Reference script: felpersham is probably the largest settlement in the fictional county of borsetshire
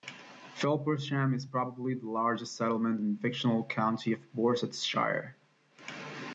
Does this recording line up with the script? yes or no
yes